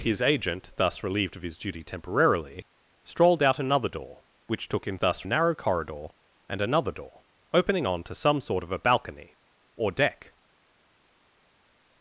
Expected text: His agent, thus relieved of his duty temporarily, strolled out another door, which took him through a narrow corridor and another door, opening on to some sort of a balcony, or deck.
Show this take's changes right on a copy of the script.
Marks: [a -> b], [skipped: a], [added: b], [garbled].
His agent, thus relieved of his duty temporarily, strolled out another door, which took him [through -> thus] a narrow corridor and another door, opening on to some sort of a balcony, or deck.